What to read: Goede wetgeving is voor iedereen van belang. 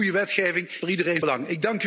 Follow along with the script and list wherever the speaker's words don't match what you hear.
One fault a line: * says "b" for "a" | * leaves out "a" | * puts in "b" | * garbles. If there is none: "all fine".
* leaves out "is"
* leaves out "van"